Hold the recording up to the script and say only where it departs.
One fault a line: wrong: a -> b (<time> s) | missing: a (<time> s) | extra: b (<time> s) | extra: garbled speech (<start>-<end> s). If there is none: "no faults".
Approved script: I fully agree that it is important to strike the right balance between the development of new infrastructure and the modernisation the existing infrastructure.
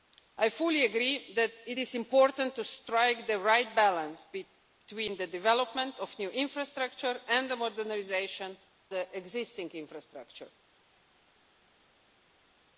no faults